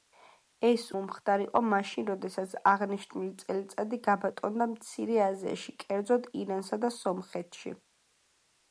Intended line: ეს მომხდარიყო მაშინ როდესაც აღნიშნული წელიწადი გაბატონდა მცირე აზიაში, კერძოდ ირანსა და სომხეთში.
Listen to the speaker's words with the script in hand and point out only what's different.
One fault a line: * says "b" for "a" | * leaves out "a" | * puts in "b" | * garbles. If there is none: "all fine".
all fine